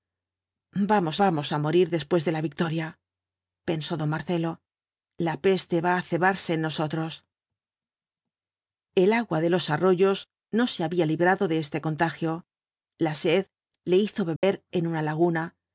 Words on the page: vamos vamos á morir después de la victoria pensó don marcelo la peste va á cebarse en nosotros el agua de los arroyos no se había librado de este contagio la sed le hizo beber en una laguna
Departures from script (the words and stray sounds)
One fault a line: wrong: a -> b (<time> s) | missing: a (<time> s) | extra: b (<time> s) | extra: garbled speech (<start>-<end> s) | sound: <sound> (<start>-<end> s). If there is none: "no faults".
sound: dropout (14.4-14.4 s)